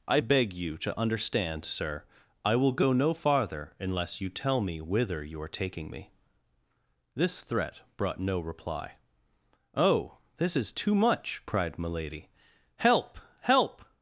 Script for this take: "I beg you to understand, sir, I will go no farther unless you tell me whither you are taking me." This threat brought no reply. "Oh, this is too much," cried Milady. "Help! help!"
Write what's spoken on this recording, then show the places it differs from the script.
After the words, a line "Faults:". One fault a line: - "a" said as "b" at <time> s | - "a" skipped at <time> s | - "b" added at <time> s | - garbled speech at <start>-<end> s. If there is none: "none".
"I beg you to understand, sir, I will go no farther unless you tell me whither you are taking me." This threat brought no reply. "Oh, this is too much," cried Milady. "Help! help!"
Faults:
none